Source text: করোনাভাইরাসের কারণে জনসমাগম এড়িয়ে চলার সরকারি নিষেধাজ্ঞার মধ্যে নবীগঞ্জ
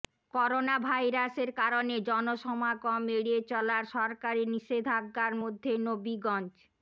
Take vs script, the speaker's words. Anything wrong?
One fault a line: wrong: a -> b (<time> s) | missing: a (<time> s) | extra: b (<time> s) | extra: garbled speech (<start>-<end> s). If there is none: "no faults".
no faults